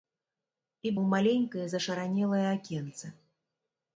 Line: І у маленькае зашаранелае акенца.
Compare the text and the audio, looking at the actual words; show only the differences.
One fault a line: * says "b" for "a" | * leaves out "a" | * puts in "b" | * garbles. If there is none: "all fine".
all fine